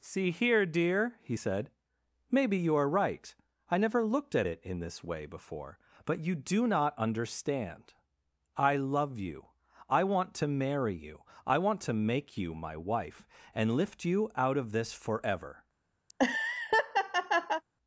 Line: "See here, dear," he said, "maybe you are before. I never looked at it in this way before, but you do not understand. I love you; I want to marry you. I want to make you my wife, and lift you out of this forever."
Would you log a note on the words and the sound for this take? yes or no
yes